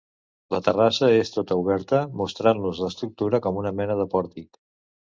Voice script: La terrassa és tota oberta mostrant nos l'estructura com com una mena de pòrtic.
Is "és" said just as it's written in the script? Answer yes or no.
yes